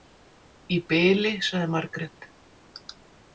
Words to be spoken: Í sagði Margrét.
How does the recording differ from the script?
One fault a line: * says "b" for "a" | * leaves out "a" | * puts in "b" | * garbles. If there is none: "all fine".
* puts in "bili"